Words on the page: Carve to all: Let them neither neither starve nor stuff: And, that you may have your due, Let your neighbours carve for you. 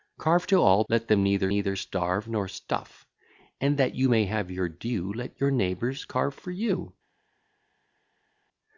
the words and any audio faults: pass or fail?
pass